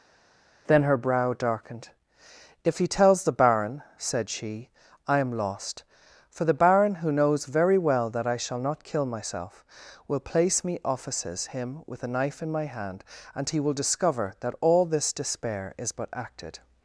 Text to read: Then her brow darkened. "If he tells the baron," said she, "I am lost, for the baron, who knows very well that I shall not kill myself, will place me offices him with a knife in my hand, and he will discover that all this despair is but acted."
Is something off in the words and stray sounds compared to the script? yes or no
no